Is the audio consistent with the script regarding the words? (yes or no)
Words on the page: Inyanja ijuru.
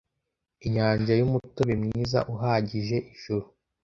no